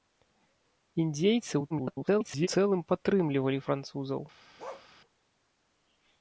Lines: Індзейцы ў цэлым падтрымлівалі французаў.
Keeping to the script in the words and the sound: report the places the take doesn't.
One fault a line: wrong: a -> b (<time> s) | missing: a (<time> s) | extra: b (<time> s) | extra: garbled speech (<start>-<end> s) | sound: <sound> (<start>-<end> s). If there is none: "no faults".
extra: garbled speech (1.7-2.5 s)
sound: bark (4.6-4.9 s)